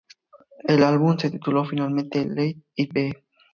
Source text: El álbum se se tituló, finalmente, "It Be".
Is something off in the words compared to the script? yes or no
yes